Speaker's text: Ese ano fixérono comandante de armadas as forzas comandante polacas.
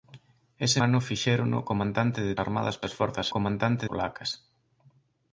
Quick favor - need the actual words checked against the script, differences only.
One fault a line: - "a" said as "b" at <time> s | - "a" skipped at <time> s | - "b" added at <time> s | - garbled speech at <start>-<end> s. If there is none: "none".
none